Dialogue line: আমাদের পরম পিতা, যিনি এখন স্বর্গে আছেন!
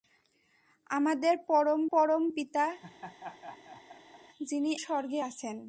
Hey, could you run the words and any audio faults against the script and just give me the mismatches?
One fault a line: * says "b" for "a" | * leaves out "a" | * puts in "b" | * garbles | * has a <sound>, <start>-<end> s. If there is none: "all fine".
* puts in "পরম"
* has a laugh, 2.8-4.2 s
* leaves out "এখন"